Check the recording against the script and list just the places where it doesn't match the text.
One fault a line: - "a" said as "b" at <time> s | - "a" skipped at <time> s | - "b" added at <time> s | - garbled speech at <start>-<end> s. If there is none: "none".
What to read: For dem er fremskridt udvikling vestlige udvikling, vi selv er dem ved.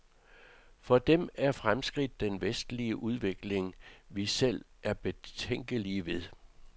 - "udvikling" said as "den" at 2.2 s
- "dem" said as "betænkelige" at 4.9 s